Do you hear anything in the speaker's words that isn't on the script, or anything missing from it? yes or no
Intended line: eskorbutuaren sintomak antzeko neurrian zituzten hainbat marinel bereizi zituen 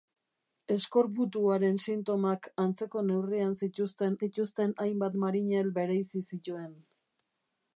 yes